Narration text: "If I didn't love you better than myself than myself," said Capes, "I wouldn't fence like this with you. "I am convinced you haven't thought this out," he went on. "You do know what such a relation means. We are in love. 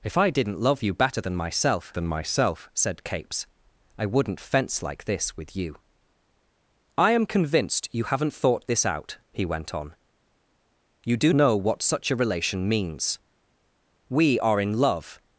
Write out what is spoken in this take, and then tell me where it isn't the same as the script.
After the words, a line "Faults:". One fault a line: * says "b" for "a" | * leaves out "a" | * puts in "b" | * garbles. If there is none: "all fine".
"If I didn't love you better than myself than myself," said Capes, "I wouldn't fence like this with you. "I am convinced you haven't thought this out," he went on. "You do know what such a relation means. We are in love.
Faults:
all fine